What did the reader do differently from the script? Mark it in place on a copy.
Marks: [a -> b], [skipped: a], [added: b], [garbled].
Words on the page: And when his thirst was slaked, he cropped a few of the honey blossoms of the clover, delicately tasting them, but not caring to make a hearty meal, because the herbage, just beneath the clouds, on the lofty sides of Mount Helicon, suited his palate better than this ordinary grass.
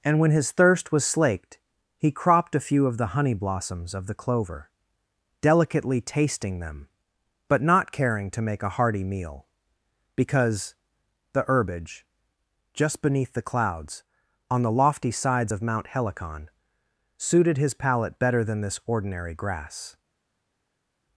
And when his thirst was slaked, he cropped a few of the honey blossoms of the clover, delicately tasting them, but not caring to make a hearty meal, because the herbage, just beneath the clouds, on the lofty sides of Mount Helicon, suited his palate better than this ordinary grass.